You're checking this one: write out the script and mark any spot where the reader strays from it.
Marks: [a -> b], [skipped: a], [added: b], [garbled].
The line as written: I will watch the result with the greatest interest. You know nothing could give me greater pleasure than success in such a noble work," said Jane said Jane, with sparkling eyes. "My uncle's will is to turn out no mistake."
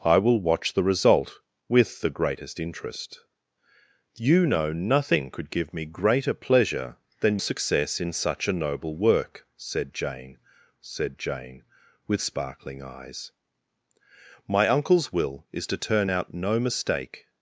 I will watch the result with the greatest interest. You know nothing could give me greater pleasure than success in such a noble work," said Jane said Jane, with sparkling eyes. "My uncle's will is to turn out no mistake."